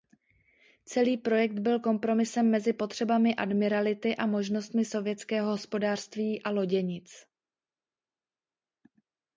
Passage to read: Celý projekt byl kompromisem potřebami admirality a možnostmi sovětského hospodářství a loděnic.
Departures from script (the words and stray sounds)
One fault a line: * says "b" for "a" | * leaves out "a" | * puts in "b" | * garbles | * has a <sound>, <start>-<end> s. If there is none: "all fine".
* puts in "mezi"